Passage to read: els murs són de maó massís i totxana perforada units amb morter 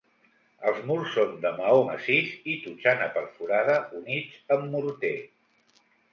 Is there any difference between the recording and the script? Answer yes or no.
no